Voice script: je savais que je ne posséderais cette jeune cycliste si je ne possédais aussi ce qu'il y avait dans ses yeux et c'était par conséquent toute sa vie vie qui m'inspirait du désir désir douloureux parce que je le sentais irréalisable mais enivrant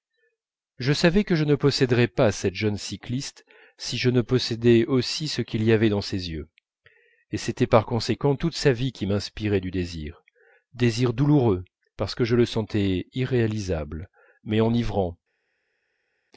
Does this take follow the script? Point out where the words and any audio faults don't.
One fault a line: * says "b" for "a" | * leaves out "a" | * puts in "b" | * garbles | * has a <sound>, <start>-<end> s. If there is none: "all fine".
* puts in "pas"
* leaves out "vie"